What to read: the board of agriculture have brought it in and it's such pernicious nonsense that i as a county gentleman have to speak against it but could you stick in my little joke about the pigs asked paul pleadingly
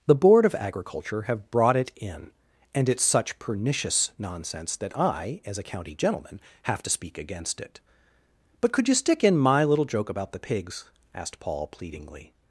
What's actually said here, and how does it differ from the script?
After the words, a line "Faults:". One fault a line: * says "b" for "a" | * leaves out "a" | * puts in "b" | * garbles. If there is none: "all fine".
the board of agriculture have brought it in and it's such pernicious nonsense that i as a county gentleman have to speak against it but could you stick in my little joke about the pigs asked paul pleadingly
Faults:
all fine